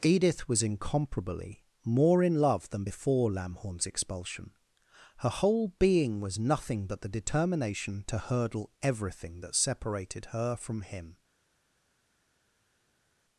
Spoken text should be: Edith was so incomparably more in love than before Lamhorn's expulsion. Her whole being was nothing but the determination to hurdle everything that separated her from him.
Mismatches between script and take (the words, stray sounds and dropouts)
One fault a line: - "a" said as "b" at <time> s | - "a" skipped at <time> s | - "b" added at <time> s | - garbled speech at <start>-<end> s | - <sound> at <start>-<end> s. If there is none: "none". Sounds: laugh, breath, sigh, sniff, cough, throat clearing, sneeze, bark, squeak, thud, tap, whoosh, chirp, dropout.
- "so" skipped at 0.6 s